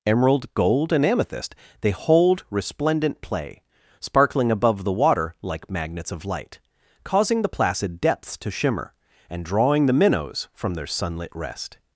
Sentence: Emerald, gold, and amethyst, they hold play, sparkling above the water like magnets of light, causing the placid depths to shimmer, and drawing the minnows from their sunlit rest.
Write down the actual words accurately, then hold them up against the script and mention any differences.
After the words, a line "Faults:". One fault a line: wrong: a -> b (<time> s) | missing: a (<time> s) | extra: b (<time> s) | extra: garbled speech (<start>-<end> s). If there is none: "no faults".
Emerald, gold, and amethyst, they hold resplendent play, sparkling above the water like magnets of light, causing the placid depths to shimmer, and drawing the minnows from their sunlit rest.
Faults:
extra: resplendent (2.5 s)